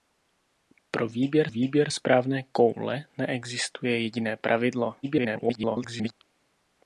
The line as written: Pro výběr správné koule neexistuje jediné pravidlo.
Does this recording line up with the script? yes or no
no